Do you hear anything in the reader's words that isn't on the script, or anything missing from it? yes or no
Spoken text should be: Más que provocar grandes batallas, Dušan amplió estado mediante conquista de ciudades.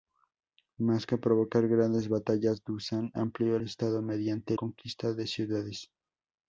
no